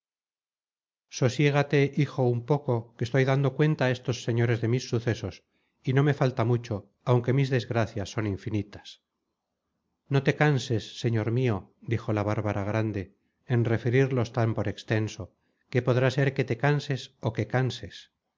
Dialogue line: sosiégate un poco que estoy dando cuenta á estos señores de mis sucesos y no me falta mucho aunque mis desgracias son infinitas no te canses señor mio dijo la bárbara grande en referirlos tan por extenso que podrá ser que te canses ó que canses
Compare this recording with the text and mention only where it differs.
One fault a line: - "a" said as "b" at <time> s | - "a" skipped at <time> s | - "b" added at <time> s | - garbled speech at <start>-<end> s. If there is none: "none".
- "hijo" added at 1.9 s